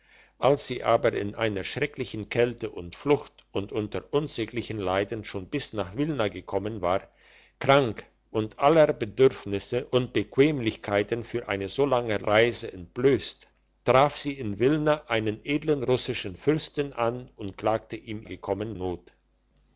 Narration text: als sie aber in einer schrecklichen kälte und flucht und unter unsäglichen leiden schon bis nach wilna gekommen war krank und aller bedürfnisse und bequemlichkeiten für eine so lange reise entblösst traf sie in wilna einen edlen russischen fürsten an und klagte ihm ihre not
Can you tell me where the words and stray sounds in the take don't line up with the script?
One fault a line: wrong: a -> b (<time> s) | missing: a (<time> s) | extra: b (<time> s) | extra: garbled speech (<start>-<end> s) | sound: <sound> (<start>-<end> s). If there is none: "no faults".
wrong: ihre -> gekommen (18.2 s)